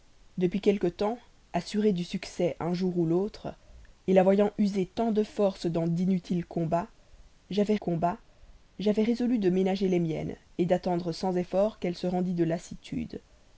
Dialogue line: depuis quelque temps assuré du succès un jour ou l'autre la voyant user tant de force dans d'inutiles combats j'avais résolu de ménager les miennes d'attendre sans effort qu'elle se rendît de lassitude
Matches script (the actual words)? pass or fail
fail